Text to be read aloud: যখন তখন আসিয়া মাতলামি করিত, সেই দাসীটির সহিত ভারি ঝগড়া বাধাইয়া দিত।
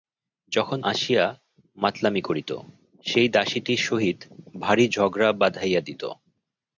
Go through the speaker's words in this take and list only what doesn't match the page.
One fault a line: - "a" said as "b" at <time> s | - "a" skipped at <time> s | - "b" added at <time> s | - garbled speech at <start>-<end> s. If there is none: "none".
- "তখন" skipped at 0.8 s